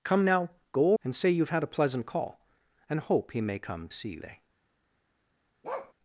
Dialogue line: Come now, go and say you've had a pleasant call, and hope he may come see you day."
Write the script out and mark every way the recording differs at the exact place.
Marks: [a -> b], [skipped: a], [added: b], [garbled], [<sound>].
Come now, go and say you've had a pleasant call, and hope he may come see you day." [bark]